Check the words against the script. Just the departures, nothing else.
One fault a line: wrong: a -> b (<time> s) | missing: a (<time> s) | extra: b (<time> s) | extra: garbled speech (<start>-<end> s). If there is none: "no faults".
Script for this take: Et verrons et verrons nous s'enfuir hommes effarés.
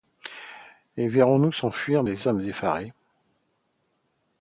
missing: et verrons (1.4 s)
extra: des (2.0 s)